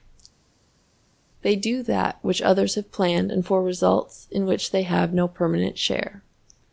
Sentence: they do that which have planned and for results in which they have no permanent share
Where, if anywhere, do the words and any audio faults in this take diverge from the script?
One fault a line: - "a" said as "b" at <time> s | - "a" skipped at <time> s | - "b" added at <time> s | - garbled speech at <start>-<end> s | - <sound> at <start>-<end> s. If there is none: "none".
- "others" added at 2.4 s